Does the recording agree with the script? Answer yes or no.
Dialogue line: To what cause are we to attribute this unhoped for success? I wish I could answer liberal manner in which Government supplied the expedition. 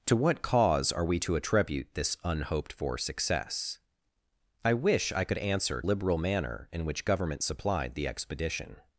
yes